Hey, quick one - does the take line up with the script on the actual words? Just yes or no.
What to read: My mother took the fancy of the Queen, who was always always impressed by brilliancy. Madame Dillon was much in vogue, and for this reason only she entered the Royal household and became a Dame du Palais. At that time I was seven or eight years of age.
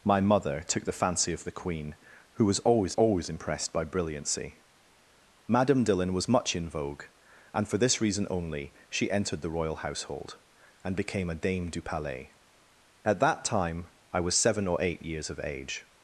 yes